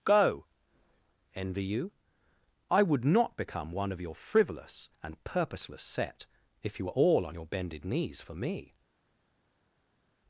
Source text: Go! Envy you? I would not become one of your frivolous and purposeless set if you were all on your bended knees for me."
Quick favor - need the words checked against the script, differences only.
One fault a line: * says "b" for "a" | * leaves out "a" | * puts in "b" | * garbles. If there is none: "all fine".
all fine